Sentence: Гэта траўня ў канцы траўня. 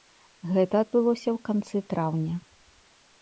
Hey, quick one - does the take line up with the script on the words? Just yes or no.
no